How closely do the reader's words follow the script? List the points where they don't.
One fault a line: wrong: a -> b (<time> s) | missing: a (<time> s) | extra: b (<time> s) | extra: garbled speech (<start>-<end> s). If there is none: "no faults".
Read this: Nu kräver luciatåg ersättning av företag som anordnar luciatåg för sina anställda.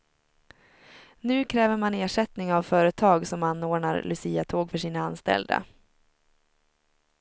wrong: luciatåg -> man (1.8 s)